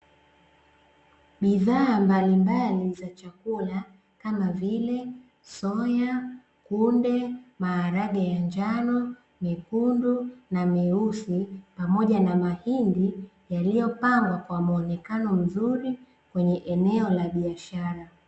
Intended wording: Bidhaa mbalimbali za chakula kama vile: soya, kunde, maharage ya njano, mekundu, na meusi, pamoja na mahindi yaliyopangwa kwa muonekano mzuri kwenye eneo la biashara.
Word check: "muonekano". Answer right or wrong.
right